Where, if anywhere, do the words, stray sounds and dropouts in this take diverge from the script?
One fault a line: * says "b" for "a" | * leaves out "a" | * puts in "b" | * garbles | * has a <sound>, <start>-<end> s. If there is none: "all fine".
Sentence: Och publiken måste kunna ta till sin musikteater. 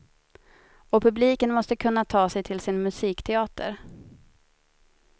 * puts in "sig"